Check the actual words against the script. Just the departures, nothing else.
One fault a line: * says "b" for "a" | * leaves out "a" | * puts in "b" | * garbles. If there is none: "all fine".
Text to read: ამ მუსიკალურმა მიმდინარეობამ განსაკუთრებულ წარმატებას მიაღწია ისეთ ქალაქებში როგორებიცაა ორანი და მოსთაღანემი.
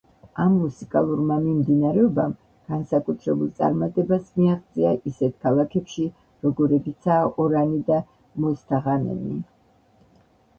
all fine